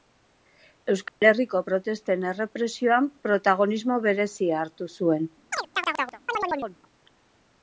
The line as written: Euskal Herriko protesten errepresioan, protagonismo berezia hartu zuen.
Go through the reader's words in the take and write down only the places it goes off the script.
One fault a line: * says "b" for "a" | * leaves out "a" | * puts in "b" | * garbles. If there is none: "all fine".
all fine